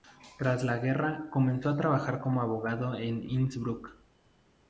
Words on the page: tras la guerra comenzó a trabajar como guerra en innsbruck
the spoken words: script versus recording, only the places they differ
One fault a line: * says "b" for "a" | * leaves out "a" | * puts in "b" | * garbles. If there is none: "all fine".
* says "abogado" for "guerra"